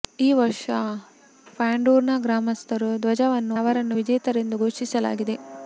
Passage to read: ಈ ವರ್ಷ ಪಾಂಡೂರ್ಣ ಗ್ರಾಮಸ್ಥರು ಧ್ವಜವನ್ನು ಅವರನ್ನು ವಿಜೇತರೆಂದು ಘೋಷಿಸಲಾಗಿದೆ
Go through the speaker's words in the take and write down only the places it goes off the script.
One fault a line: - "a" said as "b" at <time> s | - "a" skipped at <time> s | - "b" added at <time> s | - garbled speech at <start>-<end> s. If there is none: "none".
none